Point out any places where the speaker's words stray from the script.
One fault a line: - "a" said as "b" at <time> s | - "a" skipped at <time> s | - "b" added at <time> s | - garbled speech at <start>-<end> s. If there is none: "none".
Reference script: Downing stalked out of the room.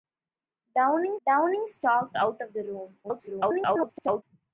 - "downing" added at 1.3 s
- garbled speech at 3.0-4.2 s